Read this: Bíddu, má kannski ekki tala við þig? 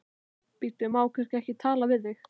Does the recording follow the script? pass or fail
pass